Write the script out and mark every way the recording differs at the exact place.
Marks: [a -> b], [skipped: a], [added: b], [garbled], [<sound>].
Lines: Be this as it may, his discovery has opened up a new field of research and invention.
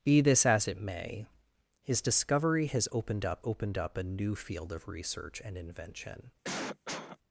Be this as it may, his discovery has opened up [added: opened up] a new field of research and invention. [cough]